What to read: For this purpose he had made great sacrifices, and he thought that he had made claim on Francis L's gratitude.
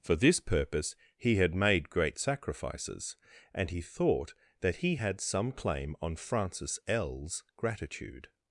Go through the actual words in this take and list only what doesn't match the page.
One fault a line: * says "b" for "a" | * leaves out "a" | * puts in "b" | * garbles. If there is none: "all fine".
* says "some" for "made"